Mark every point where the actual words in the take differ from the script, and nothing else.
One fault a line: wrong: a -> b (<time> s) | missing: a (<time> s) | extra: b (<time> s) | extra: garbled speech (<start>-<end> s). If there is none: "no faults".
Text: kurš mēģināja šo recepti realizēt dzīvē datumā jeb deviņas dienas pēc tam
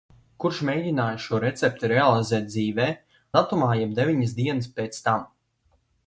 no faults